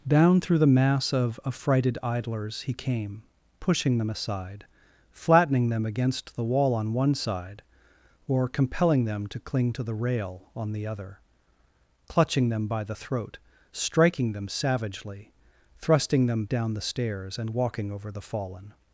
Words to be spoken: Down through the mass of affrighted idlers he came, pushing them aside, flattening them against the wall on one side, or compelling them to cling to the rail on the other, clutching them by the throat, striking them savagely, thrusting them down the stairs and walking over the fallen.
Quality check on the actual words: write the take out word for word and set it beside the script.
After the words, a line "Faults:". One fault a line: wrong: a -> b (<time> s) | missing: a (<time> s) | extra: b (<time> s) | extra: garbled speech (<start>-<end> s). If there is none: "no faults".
Down through the mass of affrighted idlers he came, pushing them aside, flattening them against the wall on one side, or compelling them to cling to the rail on the other, clutching them by the throat, striking them savagely, thrusting them down the stairs and walking over the fallen.
Faults:
no faults